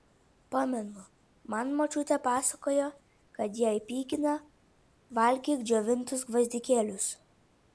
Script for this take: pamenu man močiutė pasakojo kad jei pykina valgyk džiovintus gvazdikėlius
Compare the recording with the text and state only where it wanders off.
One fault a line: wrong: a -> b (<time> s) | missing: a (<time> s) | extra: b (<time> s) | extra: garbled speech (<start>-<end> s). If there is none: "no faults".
no faults